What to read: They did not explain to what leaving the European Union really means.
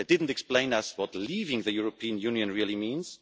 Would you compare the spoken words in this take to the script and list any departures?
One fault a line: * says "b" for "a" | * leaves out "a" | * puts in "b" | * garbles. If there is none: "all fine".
* puts in "us"